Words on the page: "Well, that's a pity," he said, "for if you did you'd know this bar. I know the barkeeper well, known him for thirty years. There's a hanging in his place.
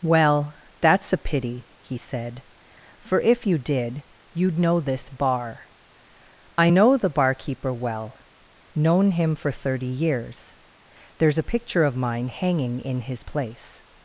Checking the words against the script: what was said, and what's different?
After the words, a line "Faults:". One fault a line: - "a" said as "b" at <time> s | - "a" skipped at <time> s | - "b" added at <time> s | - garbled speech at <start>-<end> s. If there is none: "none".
"Well, that's a pity," he said, "for if you did you'd know this bar. I know the barkeeper well, known him for thirty years. There's a picture of mine hanging in his place.
Faults:
- "picture of mine" added at 11.4 s